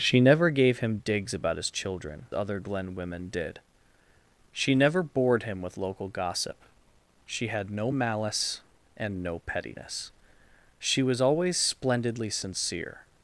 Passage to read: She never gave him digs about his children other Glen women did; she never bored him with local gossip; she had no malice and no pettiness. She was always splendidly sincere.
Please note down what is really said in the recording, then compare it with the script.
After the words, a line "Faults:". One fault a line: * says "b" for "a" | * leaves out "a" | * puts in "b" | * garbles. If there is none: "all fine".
She never gave him digs about his children other Glen women did; she never bored him with local gossip; she had no malice and no pettiness. She was always splendidly sincere.
Faults:
all fine